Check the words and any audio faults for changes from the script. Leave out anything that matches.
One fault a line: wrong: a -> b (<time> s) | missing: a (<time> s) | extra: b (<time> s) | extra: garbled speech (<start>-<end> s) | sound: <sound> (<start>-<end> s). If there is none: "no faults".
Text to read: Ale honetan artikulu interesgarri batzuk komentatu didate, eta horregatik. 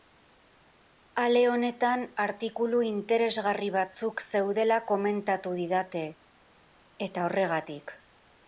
extra: zeudela (4.3 s)